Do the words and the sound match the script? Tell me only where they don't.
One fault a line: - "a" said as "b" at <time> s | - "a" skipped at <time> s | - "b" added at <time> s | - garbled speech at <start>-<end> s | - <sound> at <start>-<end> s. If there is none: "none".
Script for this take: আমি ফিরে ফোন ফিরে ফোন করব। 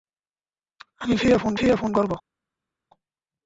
none